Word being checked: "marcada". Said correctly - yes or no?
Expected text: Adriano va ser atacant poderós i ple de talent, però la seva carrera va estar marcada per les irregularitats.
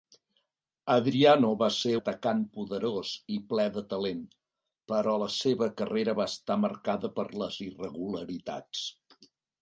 yes